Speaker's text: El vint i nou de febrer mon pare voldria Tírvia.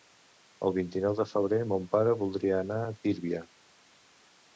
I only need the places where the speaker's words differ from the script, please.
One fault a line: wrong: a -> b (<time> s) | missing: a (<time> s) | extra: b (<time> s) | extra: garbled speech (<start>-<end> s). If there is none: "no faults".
extra: anar a (2.7 s)